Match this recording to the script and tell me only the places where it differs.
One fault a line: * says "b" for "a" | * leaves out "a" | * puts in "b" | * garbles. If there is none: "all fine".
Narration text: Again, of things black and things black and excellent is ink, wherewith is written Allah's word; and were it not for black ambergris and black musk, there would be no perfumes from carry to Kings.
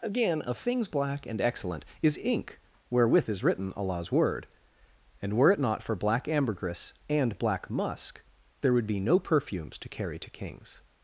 * leaves out "things black and"
* says "to" for "from"